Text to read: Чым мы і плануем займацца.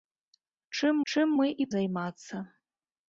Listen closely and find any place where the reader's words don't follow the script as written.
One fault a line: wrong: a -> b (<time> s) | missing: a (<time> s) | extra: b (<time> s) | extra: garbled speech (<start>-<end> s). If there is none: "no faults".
extra: чым (1.1 s)
missing: плануем (1.7 s)